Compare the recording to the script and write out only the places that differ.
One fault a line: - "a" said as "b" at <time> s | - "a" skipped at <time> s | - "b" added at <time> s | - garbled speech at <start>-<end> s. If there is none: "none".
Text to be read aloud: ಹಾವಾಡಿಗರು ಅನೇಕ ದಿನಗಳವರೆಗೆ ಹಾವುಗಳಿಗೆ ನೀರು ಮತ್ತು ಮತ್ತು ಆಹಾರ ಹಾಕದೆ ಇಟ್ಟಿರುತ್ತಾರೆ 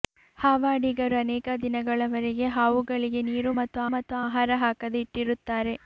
none